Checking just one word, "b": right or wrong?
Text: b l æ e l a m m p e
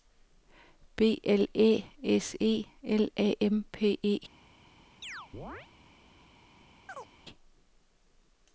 right